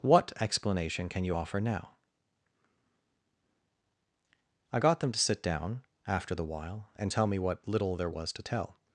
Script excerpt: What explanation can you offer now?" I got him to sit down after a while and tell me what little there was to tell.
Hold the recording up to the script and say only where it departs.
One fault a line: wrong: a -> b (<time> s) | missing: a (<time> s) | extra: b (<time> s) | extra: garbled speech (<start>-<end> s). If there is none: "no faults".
wrong: him -> them (5.0 s)
wrong: a -> the (6.3 s)